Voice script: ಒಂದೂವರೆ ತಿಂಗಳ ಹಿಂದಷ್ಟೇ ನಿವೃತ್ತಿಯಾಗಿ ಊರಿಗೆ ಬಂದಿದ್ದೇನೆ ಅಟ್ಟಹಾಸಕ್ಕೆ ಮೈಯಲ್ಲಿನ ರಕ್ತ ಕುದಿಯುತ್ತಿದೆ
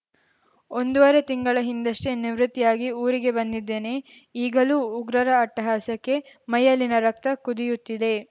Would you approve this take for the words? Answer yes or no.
no